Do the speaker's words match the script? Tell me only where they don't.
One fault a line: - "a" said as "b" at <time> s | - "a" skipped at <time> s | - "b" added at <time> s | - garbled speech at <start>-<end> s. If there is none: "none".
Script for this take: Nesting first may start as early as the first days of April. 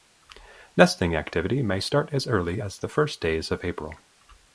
- "first" said as "activity" at 1.1 s